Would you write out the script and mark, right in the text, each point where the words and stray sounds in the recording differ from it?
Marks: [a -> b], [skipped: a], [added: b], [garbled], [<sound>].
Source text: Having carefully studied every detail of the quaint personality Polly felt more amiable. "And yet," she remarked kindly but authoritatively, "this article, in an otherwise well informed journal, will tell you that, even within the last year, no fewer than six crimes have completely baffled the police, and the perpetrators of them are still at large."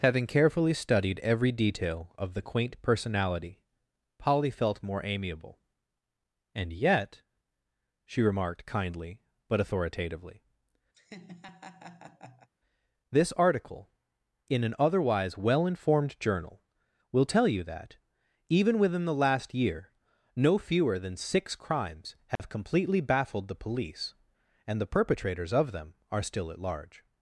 Having carefully studied every detail of the quaint personality Polly felt more amiable. "And yet," she remarked kindly but authoritatively, [laugh] "this article, in an otherwise well informed journal, will tell you that, even within the last year, no fewer than six crimes have [dropout] completely baffled the police, and the perpetrators of them are still at large."